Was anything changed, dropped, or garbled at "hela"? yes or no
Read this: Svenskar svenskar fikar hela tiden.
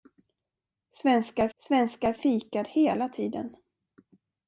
no